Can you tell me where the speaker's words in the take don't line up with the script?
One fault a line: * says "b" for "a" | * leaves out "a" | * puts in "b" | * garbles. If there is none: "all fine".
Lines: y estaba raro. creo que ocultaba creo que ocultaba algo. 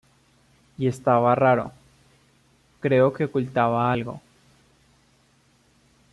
* leaves out "creo que ocultaba"